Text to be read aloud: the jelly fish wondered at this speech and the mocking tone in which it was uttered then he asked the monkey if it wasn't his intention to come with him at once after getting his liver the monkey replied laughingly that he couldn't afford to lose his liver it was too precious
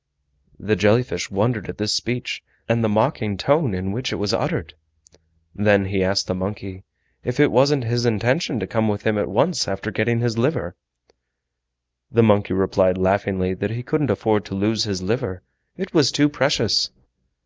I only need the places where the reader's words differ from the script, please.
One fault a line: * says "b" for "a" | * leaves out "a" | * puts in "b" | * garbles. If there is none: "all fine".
all fine